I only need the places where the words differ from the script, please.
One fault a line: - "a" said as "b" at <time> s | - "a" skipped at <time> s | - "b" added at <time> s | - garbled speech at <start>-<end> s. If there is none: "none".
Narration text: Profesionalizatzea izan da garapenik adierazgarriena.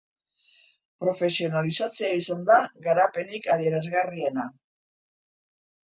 none